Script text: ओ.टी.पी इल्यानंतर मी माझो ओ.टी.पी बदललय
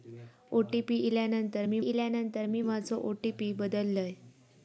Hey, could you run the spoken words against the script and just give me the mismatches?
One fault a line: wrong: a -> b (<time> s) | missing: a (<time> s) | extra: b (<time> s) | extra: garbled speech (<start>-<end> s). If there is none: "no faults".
extra: इल्यानंतर मी (1.8 s)